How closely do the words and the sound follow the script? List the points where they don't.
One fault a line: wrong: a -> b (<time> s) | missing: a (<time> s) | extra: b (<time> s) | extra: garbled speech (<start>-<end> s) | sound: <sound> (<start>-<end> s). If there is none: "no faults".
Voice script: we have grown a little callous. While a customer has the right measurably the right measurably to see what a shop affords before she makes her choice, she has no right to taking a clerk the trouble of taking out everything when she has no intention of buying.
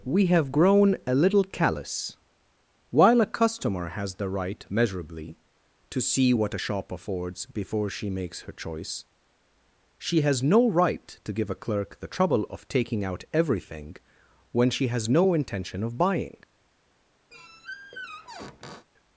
missing: the right measurably (5.4 s)
wrong: taking -> give (11.3 s)
sound: squeak (17.3-18.9 s)